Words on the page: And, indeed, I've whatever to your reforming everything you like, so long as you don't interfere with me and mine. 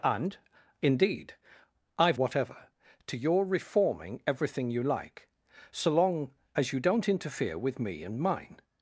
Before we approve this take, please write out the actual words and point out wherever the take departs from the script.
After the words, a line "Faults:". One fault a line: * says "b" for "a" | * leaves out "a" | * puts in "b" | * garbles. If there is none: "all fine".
And, indeed, I've whatever to your reforming everything you like, so long as you don't interfere with me and mine.
Faults:
all fine